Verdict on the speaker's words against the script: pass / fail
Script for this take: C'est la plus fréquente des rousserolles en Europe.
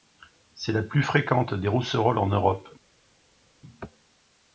pass